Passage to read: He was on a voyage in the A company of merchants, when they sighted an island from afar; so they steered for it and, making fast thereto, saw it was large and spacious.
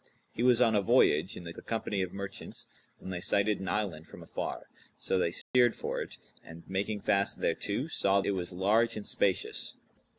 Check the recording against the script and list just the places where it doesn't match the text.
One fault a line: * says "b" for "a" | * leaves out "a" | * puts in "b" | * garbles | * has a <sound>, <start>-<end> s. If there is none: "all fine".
* has a dropout, 5.4-5.5 s